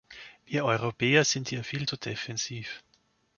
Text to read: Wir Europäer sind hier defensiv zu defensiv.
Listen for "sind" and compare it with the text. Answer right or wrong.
right